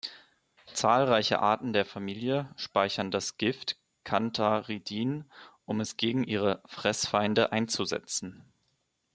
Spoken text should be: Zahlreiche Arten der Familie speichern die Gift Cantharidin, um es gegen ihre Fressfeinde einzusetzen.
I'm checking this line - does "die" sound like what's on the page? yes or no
no